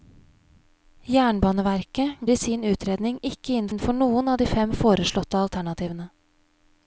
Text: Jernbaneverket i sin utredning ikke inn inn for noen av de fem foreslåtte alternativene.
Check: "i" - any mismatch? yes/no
no